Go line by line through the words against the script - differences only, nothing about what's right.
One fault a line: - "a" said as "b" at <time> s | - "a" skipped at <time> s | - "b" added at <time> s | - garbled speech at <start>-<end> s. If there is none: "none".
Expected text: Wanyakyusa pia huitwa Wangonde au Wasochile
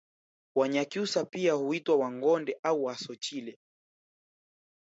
none